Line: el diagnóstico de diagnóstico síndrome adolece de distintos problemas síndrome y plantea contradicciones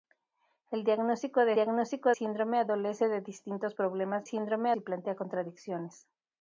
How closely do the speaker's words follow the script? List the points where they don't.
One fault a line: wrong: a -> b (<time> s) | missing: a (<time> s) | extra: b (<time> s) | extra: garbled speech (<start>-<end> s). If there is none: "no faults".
no faults